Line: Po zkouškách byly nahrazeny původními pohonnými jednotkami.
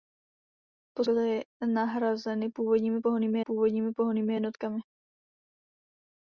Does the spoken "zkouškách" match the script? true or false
false